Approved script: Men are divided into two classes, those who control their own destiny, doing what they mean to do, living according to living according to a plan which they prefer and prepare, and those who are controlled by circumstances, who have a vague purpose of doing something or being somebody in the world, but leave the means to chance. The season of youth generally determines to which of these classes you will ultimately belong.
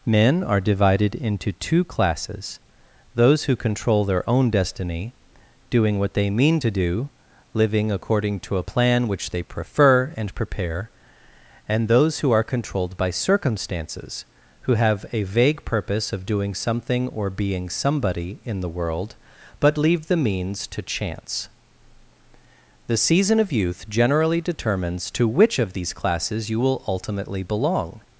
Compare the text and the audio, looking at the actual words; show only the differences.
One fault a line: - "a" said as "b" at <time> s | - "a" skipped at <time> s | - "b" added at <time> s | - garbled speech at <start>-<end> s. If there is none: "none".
- "living according to" skipped at 8.6 s